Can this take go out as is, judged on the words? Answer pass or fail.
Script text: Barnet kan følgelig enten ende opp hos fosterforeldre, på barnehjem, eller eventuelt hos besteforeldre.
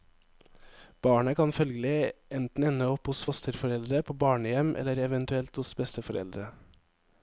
pass